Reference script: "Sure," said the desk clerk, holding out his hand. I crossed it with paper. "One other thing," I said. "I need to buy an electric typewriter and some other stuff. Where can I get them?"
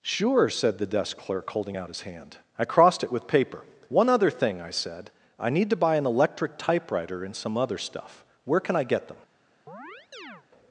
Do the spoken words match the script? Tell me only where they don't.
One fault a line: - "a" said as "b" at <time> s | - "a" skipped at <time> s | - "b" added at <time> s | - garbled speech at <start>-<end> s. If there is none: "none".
none